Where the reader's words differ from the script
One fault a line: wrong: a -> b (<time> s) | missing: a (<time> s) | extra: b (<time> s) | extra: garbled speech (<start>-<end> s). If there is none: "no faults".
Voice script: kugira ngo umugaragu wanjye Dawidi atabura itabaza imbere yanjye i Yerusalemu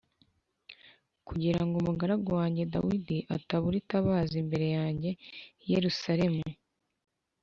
no faults